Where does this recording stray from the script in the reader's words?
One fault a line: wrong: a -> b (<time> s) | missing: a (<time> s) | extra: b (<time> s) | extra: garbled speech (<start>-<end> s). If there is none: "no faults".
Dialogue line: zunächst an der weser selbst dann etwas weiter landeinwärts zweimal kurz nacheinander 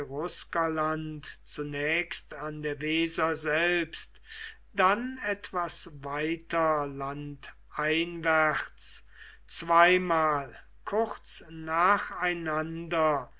no faults